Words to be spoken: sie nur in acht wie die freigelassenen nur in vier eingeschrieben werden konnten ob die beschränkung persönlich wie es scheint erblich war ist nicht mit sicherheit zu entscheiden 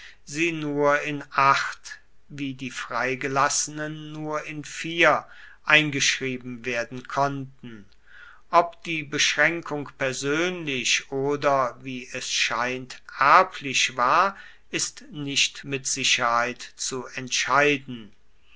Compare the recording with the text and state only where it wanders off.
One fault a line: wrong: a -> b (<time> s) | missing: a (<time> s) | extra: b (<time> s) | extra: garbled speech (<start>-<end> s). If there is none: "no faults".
extra: oder (11.1 s)